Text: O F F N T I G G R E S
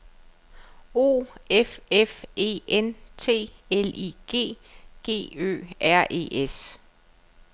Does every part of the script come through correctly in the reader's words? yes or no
no